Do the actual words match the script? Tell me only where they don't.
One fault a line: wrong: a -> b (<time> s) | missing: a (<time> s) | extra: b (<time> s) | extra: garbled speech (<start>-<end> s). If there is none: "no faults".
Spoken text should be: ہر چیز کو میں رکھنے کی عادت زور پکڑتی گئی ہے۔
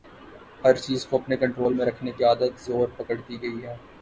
extra: اپنے کنٹرول (1.2 s)